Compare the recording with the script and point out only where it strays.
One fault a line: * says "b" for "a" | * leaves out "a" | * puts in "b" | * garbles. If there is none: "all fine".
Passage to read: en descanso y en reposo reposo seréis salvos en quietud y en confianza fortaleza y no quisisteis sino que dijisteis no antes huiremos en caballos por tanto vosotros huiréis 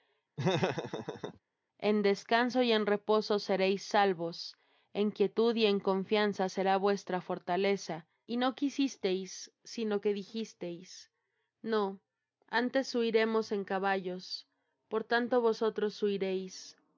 * leaves out "reposo"
* puts in "será vuestra"